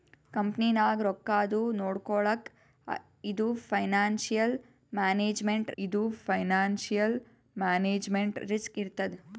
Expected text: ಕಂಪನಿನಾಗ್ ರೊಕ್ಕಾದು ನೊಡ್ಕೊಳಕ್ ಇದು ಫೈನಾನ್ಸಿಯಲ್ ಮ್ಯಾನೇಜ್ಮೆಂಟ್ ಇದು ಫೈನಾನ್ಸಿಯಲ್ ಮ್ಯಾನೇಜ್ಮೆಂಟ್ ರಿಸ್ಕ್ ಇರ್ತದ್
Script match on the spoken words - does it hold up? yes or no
yes